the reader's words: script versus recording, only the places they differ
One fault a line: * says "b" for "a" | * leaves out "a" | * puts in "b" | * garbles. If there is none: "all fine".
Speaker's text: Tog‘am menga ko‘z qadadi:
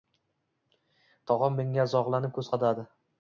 * puts in "zog‘lanib"